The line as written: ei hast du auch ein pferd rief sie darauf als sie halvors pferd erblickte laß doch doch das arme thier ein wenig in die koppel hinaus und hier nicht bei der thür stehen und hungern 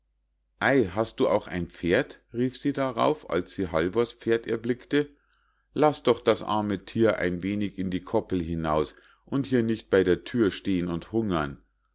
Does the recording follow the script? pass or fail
fail